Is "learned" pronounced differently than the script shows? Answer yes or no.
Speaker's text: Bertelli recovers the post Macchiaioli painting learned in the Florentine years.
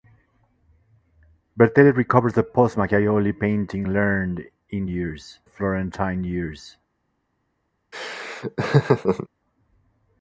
no